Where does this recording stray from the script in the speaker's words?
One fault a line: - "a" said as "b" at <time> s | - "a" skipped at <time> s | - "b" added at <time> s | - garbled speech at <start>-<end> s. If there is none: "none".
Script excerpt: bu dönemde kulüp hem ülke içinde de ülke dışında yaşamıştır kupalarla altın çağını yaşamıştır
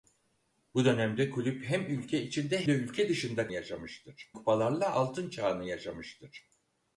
none